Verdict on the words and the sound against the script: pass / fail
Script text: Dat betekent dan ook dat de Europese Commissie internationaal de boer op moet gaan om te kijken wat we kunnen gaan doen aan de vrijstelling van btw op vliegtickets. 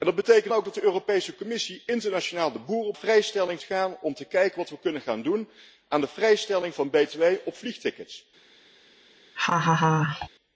fail